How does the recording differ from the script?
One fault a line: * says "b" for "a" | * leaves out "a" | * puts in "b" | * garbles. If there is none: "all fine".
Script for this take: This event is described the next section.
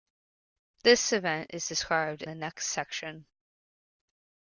all fine